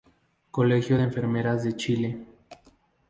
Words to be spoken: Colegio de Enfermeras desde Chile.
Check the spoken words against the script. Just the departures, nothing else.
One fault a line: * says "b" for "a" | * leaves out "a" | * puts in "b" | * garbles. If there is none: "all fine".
* says "de" for "desde"